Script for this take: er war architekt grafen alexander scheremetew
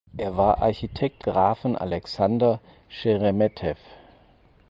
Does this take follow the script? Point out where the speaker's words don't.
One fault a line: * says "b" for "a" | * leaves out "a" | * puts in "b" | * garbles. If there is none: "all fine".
all fine